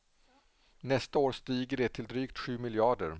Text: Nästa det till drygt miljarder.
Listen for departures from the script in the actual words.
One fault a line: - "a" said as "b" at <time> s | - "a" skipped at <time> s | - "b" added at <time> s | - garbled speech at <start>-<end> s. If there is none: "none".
- "år stiger" added at 1.2 s
- "sju" added at 2.4 s